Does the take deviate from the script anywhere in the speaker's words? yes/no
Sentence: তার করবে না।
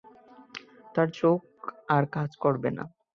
yes